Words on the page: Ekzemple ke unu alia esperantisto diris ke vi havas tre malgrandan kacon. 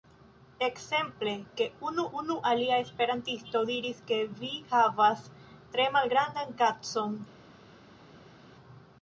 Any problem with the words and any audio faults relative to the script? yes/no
yes